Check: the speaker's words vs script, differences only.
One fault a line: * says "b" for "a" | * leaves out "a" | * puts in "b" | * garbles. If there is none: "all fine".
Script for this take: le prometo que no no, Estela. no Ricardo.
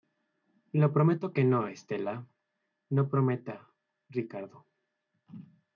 * leaves out "no"
* puts in "prometa"